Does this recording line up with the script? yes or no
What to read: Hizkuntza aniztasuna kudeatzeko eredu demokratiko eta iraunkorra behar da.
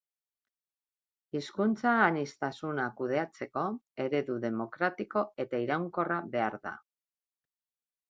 yes